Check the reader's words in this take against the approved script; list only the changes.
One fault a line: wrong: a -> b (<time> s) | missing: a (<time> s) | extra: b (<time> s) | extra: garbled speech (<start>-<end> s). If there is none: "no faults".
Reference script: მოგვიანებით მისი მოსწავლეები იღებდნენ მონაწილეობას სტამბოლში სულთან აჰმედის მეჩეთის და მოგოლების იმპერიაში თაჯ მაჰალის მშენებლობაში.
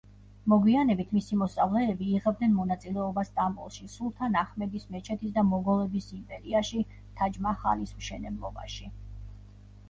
no faults